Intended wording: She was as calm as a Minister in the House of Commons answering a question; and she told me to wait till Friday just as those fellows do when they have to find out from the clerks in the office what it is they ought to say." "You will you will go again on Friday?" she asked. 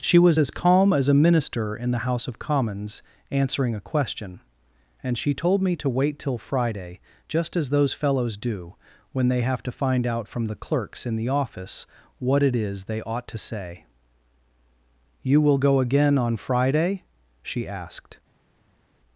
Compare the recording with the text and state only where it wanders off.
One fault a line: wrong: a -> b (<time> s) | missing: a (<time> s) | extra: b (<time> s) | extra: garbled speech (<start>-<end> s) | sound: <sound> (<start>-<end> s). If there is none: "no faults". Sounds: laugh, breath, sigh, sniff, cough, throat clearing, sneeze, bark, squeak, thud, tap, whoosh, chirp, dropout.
missing: you will (15.6 s)